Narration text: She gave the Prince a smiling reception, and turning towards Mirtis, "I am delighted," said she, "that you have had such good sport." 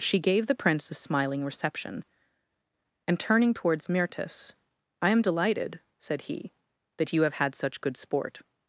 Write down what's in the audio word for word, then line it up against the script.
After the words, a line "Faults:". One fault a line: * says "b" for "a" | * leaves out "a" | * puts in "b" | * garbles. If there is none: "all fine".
She gave the Prince a smiling reception, and turning towards Mirtis, "I am delighted," said he, "that you have had such good sport."
Faults:
* says "he" for "she"